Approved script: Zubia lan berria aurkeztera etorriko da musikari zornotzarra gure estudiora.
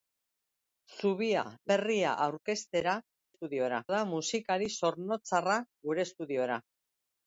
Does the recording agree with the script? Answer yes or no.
no